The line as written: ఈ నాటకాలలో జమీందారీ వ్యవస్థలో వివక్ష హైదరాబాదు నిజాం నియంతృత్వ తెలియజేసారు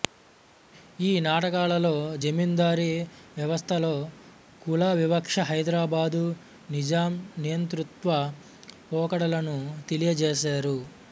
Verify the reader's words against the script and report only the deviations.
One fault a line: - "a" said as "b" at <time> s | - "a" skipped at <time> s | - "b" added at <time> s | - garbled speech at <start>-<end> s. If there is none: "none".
- "కుల" added at 4.6 s
- "పోకడలను" added at 8.9 s